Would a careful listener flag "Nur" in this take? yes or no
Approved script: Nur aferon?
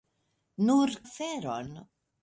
no